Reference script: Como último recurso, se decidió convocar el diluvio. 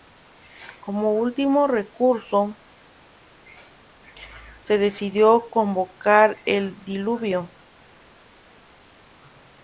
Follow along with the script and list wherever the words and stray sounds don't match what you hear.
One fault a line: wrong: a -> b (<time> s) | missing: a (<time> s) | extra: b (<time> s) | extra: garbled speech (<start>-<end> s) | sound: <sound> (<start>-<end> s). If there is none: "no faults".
no faults